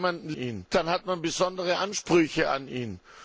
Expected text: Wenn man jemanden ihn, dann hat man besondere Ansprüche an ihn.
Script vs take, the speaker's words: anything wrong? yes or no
no